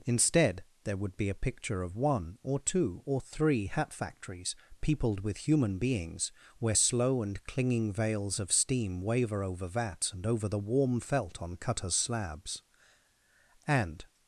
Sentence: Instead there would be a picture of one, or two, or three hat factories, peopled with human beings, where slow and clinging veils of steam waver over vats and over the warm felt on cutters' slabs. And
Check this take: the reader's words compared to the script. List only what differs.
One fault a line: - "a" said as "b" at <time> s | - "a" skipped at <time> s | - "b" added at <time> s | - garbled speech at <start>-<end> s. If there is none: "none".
none